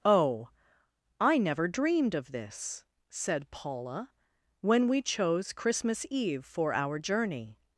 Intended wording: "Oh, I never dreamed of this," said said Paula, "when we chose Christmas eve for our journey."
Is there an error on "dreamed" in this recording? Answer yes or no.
no